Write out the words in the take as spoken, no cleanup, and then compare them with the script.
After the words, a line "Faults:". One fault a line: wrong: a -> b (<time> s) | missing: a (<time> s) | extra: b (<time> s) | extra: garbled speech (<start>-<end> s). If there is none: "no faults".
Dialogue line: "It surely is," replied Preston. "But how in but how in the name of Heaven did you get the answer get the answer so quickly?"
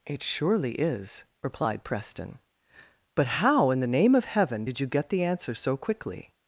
"It surely is," replied Preston. "But how in the name of Heaven did you get the answer so quickly?"
Faults:
missing: but how in (3.8 s)
missing: get the answer (5.5 s)